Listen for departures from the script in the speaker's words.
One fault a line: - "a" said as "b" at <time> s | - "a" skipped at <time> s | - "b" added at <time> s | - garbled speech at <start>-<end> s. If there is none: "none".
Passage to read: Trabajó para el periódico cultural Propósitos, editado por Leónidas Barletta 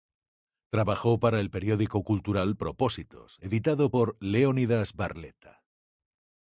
none